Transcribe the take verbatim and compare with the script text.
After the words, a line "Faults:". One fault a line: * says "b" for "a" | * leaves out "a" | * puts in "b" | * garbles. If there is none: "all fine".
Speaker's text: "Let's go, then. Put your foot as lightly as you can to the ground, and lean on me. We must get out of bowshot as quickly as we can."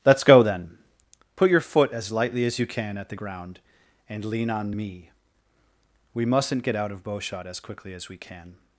"Let's go, then. Put your foot as lightly as you can at the ground, and lean on me. We mustn't get out of bowshot as quickly as we can."
Faults:
* says "at" for "to"
* says "mustn't" for "must"